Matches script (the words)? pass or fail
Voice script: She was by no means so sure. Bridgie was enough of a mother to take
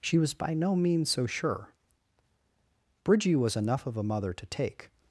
pass